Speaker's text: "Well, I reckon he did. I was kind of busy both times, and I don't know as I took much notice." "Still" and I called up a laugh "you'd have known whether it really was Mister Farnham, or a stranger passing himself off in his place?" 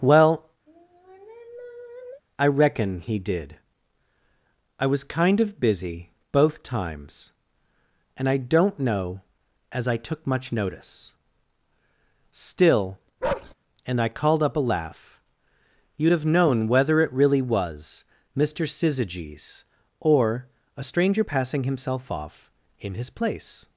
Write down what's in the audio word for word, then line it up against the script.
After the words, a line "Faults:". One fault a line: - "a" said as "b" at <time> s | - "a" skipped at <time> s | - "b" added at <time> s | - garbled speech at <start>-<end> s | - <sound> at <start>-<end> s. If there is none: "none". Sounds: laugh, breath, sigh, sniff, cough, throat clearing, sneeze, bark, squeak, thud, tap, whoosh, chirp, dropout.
"Well, I reckon he did. I was kind of busy both times, and I don't know as I took much notice." "Still" and I called up a laugh "you'd have known whether it really was Mister Syzygies, or a stranger passing himself off in his place?"
Faults:
- sigh at 0.7-2.2 s
- bark at 13.2-13.5 s
- "Farnham" said as "Syzygies" at 18.6 s